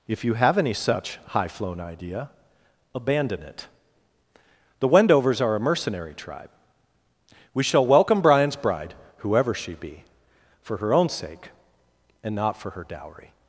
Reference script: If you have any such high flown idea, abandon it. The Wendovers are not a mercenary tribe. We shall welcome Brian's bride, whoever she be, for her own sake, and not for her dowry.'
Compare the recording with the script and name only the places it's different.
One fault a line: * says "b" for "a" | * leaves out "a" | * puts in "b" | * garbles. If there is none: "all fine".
* leaves out "not"